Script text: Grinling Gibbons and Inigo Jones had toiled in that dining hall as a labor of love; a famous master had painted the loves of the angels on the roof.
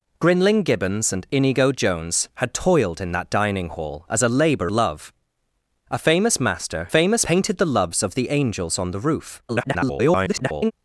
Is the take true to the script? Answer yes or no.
no